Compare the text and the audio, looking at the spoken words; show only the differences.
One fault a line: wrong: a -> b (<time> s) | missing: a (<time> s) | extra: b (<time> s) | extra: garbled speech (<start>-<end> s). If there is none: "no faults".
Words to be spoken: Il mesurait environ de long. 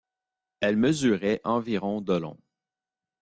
wrong: Il -> Elle (0.6 s)